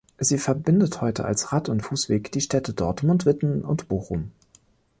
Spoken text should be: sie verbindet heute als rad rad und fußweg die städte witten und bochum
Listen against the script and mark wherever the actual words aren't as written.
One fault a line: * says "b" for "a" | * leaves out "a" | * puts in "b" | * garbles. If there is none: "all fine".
* leaves out "rad"
* puts in "dortmund"